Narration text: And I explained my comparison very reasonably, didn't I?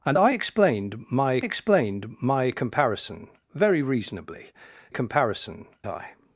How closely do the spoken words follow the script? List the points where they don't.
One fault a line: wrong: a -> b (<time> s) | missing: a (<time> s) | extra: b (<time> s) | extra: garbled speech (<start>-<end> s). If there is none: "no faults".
extra: explained my (1.4 s)
wrong: didn't -> comparison (4.9 s)